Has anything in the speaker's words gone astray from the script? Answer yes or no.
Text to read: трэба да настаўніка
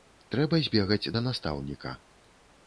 yes